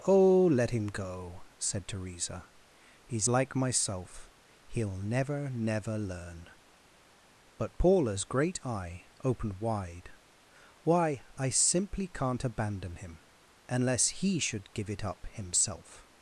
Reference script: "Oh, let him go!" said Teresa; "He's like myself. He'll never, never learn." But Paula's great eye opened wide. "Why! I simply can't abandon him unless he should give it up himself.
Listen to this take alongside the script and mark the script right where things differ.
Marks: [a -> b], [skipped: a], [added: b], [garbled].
"Oh, let him go!" said Teresa; "He's like myself. He'll never, never learn." But Paula's great eye opened wide. "Why! I simply can't abandon him unless he should give it up himself.